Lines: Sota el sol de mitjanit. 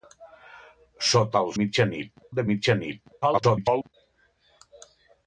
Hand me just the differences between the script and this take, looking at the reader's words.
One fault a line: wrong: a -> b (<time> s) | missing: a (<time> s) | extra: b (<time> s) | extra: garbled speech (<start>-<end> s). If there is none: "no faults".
wrong: sol -> mitjanit (1.6 s)
extra: garbled speech (3.2-3.9 s)